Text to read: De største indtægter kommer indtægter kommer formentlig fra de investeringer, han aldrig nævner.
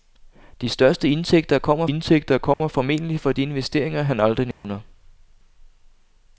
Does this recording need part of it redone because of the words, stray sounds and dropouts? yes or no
yes